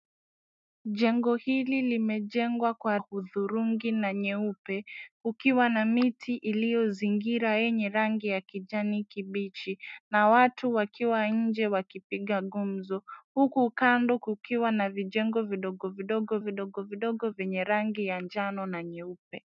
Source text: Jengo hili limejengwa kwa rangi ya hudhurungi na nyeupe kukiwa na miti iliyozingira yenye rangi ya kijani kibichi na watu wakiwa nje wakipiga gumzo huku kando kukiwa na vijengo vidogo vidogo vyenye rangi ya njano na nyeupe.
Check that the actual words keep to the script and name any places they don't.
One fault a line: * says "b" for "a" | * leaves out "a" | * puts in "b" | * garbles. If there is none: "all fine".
* leaves out "rangi ya"
* puts in "vidogo vidogo"